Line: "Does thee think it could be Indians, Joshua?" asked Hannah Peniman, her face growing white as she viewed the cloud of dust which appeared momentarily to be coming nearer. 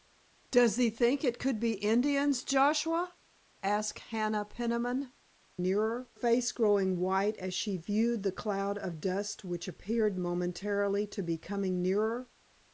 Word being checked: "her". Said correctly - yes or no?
no